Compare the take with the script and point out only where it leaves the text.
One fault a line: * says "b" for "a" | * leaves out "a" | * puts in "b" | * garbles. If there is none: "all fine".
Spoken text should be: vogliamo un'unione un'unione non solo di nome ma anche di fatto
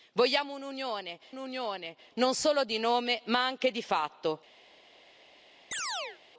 all fine